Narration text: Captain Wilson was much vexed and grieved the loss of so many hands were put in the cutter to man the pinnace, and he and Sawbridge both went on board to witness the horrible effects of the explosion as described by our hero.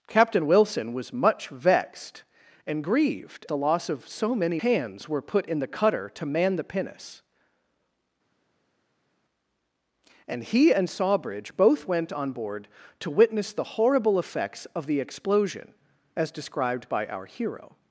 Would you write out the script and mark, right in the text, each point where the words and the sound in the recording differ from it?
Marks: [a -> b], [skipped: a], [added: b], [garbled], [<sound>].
Captain Wilson was much vexed and grieved the loss of so many hands were put in the cutter to man the pinnace, and he and Sawbridge both went on board to witness the horrible effects of the explosion as described by our hero.